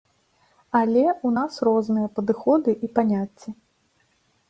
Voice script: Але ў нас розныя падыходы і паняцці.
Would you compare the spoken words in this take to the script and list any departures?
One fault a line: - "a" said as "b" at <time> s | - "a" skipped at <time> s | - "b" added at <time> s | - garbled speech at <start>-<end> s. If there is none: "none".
none